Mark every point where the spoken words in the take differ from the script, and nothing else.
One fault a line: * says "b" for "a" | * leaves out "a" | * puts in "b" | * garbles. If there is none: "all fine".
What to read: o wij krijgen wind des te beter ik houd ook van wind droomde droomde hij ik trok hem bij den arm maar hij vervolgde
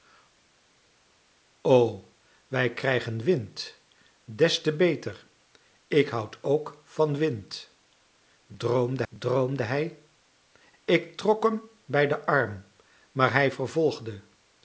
all fine